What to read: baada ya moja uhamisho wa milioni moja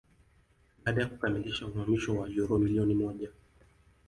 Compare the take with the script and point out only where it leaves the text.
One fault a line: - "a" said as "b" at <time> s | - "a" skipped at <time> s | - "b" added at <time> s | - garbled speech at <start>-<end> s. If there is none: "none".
- "moja" said as "kukamilisha" at 1.1 s
- "uro" added at 2.3 s